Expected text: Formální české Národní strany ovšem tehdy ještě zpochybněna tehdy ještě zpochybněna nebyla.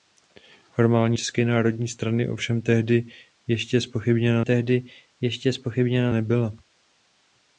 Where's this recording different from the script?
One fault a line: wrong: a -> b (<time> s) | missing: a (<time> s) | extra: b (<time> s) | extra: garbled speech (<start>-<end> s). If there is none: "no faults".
no faults